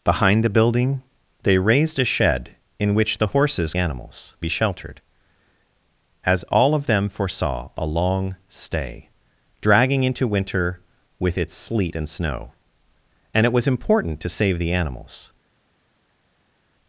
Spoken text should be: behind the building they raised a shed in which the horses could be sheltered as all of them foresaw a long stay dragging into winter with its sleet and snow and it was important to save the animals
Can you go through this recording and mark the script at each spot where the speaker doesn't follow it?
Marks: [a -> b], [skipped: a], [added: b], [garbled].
behind the building they raised a shed in which the horses [could -> animals] be sheltered as all of them foresaw a long stay dragging into winter with its sleet and snow and it was important to save the animals